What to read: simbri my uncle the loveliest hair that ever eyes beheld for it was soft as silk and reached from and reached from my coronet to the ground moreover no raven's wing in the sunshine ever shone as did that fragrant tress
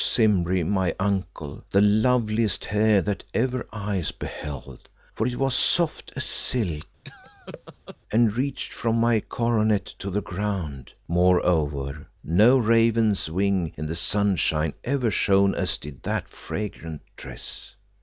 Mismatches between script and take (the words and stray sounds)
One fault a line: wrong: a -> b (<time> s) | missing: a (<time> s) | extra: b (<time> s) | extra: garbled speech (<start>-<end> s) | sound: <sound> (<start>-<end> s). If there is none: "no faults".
sound: laugh (7.0-8.0 s)
missing: and reached from (9.0 s)